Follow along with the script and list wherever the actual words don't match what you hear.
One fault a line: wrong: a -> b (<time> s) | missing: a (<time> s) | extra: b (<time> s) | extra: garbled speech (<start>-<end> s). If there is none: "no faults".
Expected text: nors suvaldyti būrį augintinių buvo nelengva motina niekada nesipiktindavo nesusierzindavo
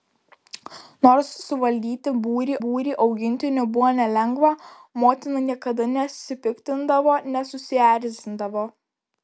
extra: būrį (2.6 s)